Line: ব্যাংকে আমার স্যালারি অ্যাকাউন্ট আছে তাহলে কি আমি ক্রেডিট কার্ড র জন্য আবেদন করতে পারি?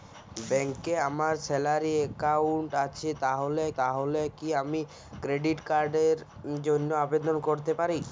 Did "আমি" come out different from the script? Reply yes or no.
no